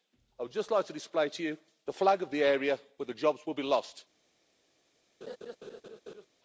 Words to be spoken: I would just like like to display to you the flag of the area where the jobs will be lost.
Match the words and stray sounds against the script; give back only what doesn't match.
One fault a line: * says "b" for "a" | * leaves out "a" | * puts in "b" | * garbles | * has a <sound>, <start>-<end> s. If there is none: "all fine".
* leaves out "like"
* has a laugh, 5.2-6.3 s